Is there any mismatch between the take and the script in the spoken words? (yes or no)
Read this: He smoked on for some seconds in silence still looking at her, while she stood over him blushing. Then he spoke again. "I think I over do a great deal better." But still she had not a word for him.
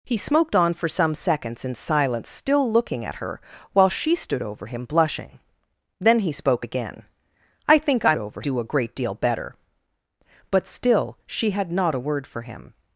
no